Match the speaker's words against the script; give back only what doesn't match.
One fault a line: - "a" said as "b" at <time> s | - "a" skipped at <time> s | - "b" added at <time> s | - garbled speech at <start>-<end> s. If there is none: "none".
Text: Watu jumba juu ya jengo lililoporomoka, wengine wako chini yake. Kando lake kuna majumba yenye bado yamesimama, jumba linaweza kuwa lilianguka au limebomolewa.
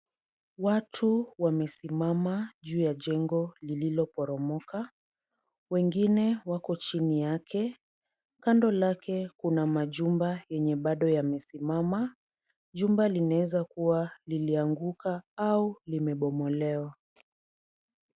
- "jumba" said as "wamesimama" at 1.4 s